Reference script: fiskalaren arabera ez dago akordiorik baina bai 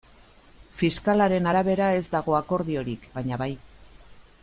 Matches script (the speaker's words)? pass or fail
pass